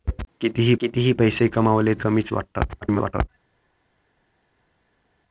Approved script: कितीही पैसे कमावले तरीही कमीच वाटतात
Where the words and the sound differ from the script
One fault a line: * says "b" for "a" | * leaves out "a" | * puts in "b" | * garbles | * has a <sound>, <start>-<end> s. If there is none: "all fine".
* puts in "कितीही"
* leaves out "तरीही"
* garbles